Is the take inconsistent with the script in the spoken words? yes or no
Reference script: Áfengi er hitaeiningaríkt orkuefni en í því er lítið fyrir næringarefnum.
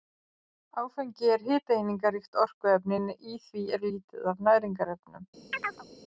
yes